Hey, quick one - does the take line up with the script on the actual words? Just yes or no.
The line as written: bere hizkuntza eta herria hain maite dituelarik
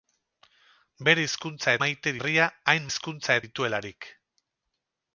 no